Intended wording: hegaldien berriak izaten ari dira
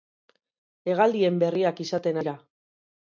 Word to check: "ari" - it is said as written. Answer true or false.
false